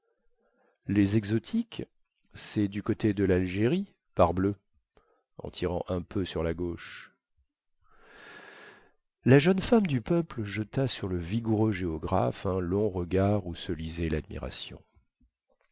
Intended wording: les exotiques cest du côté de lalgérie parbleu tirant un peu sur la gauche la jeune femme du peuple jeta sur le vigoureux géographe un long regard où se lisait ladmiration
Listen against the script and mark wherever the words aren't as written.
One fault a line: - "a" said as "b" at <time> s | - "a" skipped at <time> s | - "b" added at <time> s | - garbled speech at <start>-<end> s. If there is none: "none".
- "en" added at 5.4 s